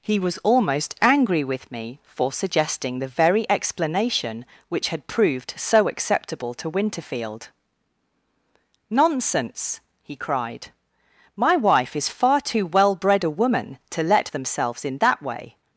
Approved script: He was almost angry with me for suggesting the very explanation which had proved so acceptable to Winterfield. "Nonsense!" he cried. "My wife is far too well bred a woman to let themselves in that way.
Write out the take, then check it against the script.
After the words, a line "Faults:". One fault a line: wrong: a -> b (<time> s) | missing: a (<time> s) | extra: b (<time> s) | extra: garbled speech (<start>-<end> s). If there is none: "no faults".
He was almost angry with me for suggesting the very explanation which had proved so acceptable to Winterfield. "Nonsense!" he cried. "My wife is far too well bred a woman to let themselves in that way.
Faults:
no faults